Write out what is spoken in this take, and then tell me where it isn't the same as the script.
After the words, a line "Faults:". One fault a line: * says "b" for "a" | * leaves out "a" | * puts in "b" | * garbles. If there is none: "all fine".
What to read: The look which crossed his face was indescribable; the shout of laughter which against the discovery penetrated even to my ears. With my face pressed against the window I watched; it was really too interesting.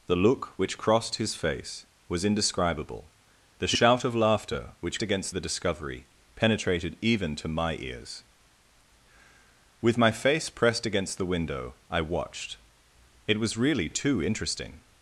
The look which crossed his face was indescribable; the shout of laughter which against the discovery penetrated even to my ears. With my face pressed against the window I watched; it was really too interesting.
Faults:
all fine